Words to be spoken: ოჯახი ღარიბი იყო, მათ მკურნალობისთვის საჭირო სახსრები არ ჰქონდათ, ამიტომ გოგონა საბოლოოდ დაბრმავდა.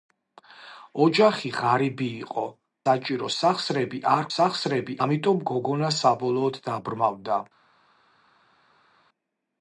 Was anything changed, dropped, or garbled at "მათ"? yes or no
yes